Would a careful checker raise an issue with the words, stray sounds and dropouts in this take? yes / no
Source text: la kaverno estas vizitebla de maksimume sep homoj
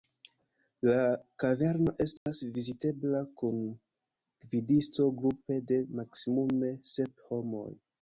yes